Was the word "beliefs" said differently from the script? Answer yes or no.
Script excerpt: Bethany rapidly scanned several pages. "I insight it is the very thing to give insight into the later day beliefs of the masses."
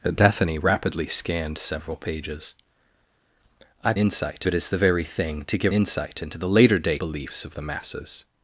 no